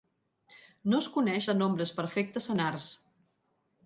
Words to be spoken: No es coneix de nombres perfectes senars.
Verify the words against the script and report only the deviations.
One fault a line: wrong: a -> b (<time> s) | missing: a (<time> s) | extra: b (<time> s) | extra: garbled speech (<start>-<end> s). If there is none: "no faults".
no faults